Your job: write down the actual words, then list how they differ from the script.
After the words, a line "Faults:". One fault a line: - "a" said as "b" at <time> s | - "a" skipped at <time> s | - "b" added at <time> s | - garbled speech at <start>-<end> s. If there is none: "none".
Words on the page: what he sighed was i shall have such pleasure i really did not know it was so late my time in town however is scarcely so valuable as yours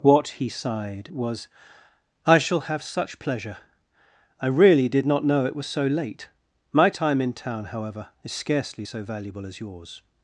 what he sighed was i shall have such pleasure i really did not know it was so late my time in town however is scarcely so valuable as yours
Faults:
none